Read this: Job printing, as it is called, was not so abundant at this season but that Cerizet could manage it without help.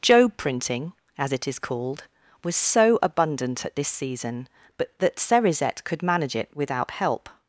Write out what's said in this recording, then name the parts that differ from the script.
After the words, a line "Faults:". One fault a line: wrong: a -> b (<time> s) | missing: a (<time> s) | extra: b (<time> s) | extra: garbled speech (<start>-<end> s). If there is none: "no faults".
Job printing, as it is called, was so abundant at this season but that Cerizet could manage it without help.
Faults:
missing: not (2.5 s)